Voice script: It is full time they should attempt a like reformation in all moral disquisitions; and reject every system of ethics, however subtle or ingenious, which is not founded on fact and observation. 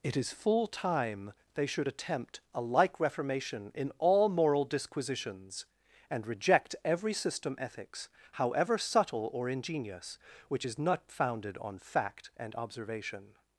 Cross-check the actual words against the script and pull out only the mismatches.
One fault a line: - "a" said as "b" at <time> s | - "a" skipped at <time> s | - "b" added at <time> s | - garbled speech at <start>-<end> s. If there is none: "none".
- "of" skipped at 7.5 s